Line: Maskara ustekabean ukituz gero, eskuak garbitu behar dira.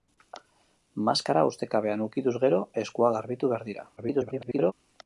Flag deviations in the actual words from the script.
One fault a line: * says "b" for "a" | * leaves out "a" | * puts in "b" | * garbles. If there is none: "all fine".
* garbles